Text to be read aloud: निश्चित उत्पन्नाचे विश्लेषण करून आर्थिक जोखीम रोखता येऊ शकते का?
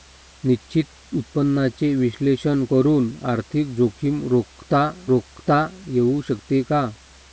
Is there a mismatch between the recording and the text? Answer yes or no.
yes